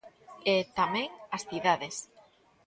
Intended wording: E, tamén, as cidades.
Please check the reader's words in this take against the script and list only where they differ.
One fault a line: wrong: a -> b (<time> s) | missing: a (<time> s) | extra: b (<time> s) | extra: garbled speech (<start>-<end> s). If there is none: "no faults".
no faults